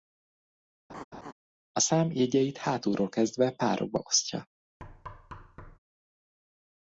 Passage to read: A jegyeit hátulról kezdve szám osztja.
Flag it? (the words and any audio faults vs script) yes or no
yes